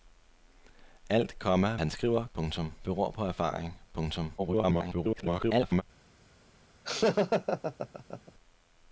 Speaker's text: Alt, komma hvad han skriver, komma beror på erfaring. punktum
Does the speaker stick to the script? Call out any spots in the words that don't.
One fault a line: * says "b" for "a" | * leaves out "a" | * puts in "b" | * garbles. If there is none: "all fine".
* leaves out "hvad"
* says "punktum" for "komma"
* garbles